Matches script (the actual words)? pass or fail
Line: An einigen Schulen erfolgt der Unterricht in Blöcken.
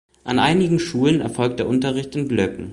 pass